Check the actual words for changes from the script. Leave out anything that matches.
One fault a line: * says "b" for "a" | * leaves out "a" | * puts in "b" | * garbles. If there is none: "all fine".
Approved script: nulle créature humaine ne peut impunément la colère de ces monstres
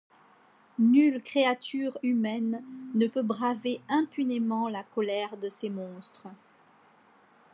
* puts in "braver"